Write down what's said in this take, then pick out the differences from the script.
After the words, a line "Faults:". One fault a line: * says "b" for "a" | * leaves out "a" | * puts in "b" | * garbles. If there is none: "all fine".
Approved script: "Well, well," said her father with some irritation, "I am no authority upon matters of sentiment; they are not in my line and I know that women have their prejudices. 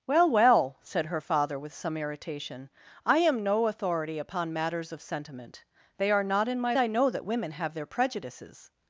"Well, well," said her father with some irritation, "I am no authority upon matters of sentiment; they are not in my I know that women have their prejudices.
Faults:
* leaves out "line and"